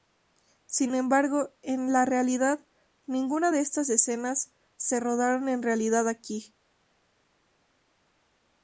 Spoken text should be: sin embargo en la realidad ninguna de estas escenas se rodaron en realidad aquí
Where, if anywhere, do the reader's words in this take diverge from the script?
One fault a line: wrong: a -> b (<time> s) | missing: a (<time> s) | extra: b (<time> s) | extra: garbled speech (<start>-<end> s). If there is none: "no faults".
no faults